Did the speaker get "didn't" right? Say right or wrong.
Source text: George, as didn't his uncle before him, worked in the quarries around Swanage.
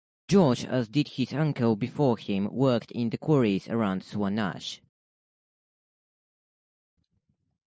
wrong